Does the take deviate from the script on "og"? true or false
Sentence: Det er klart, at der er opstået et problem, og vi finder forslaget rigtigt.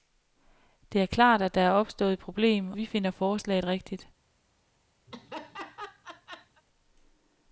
true